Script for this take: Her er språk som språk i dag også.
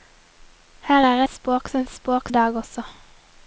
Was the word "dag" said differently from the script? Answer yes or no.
no